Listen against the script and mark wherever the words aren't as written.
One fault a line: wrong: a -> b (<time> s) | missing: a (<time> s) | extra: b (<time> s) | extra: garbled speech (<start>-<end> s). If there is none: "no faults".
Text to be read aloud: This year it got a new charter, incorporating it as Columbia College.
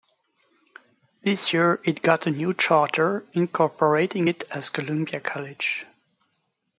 no faults